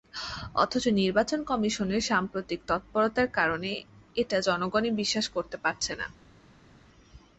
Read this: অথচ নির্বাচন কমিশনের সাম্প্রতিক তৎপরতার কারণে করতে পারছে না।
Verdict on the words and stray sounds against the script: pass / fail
fail